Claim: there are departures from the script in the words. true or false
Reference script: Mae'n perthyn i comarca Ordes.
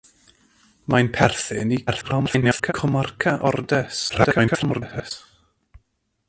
true